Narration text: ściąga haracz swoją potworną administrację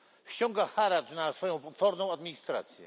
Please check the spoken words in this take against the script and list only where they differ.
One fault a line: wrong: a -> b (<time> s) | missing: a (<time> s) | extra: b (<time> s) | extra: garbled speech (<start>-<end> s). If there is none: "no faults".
extra: na (1.1 s)